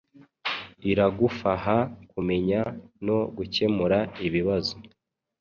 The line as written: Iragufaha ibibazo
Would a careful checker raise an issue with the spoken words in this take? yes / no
yes